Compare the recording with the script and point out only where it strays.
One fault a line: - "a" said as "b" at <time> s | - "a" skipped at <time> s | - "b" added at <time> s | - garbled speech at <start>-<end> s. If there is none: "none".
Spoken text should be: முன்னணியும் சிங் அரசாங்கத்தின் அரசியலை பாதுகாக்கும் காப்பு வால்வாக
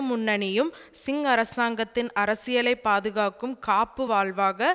none